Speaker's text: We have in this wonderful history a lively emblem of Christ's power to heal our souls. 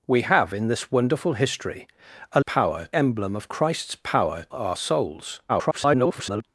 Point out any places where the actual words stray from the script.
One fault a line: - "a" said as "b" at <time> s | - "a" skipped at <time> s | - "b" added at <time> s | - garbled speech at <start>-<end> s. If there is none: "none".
- "lively" said as "power" at 2.4 s
- "to heal" skipped at 4.5 s
- garbled speech at 5.5-6.4 s